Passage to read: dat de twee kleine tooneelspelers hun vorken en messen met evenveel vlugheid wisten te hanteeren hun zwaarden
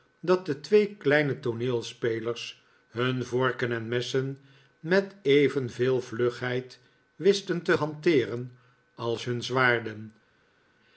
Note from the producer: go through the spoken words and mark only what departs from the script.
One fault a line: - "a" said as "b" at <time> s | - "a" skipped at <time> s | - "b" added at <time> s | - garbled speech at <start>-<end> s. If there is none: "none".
- "als" added at 8.9 s